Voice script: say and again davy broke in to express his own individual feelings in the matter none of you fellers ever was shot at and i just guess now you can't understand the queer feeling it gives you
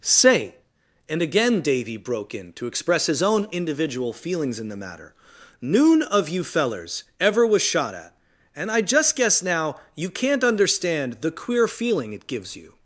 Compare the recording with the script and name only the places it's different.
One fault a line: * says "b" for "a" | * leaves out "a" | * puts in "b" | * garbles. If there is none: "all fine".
* says "noon" for "none"